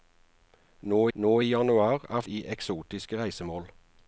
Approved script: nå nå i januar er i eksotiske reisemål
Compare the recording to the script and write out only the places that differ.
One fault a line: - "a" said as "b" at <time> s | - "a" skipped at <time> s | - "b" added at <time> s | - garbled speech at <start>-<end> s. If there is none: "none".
none